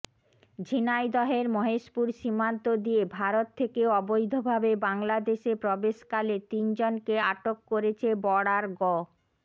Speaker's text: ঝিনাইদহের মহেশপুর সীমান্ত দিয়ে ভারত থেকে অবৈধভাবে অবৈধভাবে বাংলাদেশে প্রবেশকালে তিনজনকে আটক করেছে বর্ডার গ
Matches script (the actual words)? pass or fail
fail